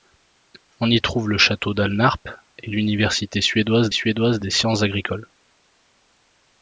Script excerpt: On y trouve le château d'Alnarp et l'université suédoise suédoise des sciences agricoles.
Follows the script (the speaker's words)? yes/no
yes